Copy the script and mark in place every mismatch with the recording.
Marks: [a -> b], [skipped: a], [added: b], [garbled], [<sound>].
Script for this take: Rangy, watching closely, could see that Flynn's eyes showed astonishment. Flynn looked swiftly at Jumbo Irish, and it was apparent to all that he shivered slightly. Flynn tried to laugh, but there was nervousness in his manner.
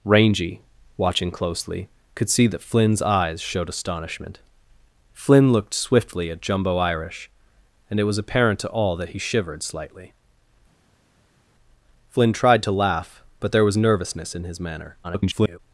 Rangy, watching closely, could see that Flynn's eyes showed astonishment. Flynn looked swiftly at Jumbo Irish, and it was apparent to all that he shivered slightly. Flynn tried to laugh, but there was nervousness in his manner. [garbled]